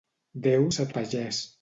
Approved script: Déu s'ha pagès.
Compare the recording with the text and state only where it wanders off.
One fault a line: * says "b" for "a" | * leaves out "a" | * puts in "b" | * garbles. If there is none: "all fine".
all fine